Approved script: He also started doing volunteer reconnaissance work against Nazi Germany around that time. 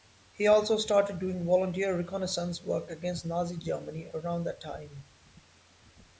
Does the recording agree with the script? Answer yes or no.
yes